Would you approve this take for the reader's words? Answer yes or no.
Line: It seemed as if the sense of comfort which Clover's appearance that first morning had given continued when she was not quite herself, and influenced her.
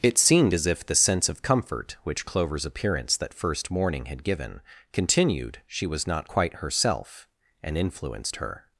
no